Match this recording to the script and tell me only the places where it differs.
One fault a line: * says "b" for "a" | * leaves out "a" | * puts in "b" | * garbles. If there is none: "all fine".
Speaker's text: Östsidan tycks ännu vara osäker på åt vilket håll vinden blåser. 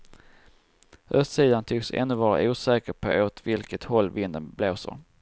all fine